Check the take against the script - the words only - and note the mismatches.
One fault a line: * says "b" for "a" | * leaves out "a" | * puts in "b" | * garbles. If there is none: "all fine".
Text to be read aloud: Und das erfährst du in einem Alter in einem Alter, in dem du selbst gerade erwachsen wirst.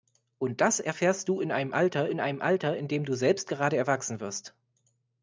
all fine